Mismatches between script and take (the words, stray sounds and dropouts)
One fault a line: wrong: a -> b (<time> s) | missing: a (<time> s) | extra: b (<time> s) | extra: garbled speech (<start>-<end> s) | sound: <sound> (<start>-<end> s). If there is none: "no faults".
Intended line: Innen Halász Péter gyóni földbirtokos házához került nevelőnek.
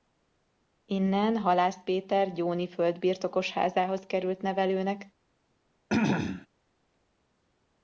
sound: throat clearing (5.9-6.5 s)